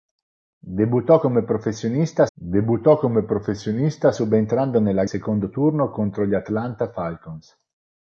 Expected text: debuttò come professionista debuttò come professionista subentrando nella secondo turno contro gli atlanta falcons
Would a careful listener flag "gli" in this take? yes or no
no